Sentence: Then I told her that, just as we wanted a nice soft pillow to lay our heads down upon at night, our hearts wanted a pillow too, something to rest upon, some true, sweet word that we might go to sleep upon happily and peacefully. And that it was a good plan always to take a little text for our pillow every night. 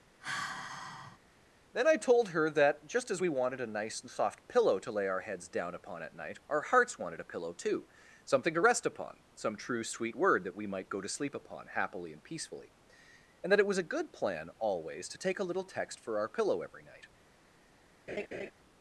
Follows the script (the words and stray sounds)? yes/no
no